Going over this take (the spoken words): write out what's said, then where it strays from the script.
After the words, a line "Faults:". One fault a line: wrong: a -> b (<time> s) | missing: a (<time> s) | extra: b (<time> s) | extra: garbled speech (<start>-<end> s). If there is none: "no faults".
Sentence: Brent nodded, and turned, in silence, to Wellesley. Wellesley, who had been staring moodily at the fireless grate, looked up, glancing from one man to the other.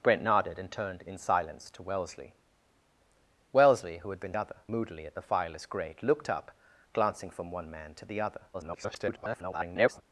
Brent nodded, and turned, in silence, to Wellesley. Wellesley, who had been other moodily at the fireless grate, looked up, glancing from one man to the other. [garbled]
Faults:
wrong: staring -> other (4.4 s)
extra: garbled speech (8.5-10.0 s)